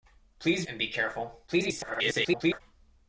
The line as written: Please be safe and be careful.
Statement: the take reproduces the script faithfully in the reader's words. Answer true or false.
false